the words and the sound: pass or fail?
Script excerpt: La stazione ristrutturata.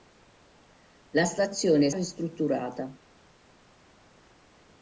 pass